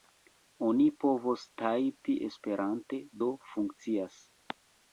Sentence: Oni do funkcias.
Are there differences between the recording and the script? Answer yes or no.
yes